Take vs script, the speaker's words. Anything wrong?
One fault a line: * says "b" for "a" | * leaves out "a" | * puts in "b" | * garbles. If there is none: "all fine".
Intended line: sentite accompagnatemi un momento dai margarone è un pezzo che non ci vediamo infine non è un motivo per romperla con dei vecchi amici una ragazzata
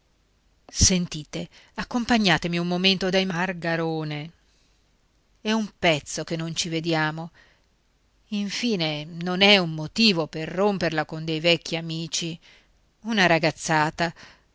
all fine